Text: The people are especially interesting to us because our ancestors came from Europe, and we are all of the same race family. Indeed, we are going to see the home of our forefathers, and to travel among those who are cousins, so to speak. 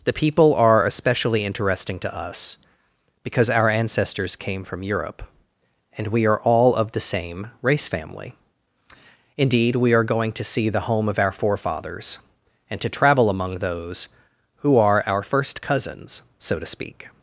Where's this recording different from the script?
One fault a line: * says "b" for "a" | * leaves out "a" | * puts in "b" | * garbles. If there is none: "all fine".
* puts in "our first"